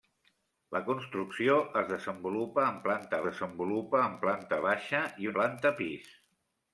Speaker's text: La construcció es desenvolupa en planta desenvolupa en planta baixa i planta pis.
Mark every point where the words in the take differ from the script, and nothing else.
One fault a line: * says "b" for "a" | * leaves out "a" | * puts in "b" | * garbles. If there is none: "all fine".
all fine